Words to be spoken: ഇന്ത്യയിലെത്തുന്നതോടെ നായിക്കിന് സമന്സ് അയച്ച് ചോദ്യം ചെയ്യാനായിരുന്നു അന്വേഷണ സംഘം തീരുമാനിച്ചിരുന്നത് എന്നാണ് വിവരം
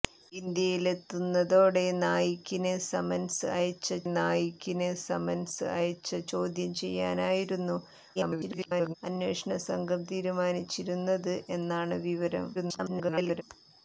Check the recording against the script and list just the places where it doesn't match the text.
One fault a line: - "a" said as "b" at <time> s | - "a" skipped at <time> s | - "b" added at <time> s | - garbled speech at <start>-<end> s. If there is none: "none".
- "നായിക്കിന് സമന്സ് അയച്ച്" added at 4.1 s
- garbled speech at 8.2-9.0 s
- garbled speech at 12.5-13.4 s